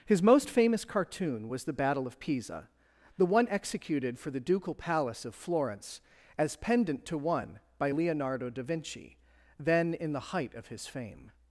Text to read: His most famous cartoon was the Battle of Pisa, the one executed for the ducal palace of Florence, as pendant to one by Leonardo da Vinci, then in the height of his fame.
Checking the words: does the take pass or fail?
pass